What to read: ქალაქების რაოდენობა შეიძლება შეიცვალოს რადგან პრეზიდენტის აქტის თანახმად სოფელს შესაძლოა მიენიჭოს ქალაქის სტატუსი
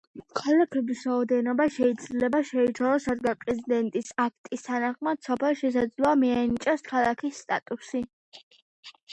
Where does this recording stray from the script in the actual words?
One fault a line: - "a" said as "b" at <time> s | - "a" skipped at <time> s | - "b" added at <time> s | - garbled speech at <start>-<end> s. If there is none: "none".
none